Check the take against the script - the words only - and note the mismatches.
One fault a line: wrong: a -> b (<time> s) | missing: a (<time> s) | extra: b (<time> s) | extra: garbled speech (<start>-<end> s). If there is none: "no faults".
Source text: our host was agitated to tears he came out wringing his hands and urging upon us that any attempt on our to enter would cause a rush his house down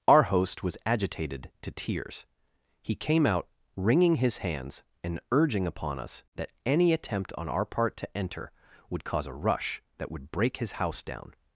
extra: part (7.7 s)
extra: that would break (10.0 s)